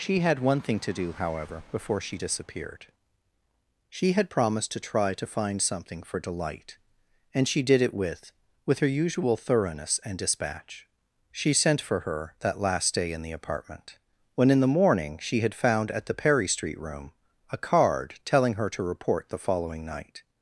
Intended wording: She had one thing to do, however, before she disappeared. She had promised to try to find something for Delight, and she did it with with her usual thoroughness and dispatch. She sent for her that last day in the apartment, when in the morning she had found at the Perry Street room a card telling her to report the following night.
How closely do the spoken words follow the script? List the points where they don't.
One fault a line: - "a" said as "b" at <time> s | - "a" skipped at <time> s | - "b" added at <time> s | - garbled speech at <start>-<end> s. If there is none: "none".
none